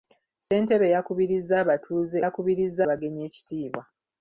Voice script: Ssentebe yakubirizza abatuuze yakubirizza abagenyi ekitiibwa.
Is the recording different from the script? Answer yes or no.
no